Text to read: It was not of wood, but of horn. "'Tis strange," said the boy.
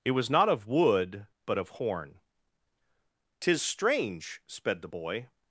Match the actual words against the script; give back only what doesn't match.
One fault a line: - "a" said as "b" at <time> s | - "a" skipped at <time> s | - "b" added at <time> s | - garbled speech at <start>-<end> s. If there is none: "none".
- "said" said as "sped" at 4.5 s